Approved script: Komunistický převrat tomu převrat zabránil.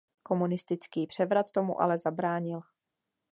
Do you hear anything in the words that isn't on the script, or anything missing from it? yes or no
yes